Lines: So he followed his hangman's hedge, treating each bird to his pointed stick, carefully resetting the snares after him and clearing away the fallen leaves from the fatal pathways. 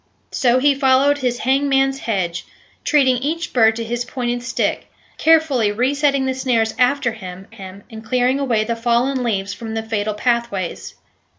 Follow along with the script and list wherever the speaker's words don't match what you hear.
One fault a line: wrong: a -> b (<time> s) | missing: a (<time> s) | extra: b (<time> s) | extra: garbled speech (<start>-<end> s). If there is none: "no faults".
extra: him (7.5 s)